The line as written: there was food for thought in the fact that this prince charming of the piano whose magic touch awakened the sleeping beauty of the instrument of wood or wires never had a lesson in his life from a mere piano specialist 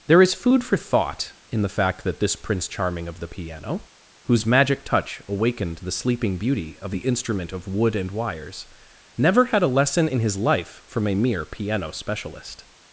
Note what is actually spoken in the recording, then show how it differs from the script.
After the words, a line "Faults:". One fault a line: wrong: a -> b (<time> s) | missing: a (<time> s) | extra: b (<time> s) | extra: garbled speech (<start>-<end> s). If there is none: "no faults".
there is food for thought in the fact that this prince charming of the piano whose magic touch awakened the sleeping beauty of the instrument of wood and wires never had a lesson in his life from a mere piano specialist
Faults:
wrong: was -> is (0.2 s)
wrong: or -> and (7.9 s)